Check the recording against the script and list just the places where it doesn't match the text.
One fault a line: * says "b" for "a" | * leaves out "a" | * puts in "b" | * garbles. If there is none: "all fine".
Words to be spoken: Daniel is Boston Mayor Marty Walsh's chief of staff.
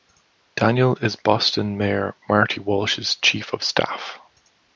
all fine